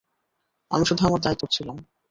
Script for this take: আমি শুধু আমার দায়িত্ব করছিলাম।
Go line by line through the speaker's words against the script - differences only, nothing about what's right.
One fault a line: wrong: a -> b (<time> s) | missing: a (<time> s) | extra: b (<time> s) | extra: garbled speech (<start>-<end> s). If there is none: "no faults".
no faults